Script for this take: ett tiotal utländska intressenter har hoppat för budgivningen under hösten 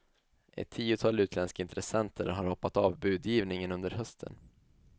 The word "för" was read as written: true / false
false